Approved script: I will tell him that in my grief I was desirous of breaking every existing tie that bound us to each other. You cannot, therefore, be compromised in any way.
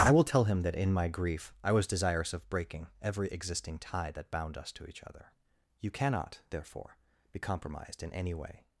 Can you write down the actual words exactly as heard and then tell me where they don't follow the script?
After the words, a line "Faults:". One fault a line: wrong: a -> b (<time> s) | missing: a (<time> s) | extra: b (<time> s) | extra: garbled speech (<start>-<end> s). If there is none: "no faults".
I will tell him that in my grief I was desirous of breaking every existing tie that bound us to each other. You cannot, therefore, be compromised in any way.
Faults:
no faults